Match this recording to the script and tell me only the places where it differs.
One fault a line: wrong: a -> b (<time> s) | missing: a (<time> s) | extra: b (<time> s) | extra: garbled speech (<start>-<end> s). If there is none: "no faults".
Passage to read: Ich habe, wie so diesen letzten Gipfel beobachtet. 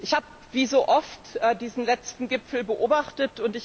extra: oft (0.9 s)